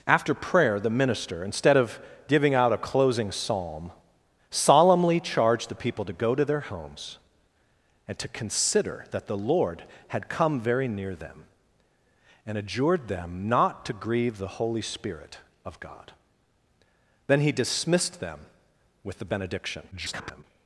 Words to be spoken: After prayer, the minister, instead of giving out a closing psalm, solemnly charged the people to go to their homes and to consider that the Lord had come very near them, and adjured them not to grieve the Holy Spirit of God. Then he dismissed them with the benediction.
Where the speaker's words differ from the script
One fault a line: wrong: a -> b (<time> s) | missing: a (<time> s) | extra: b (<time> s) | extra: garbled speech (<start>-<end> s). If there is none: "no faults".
extra: garbled speech (19.9-20.4 s)